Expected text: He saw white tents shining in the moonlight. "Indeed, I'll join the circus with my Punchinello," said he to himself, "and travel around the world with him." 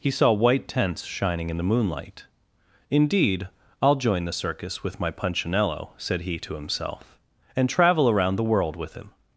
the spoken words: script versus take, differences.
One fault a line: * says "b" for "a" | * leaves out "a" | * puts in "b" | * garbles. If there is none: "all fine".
all fine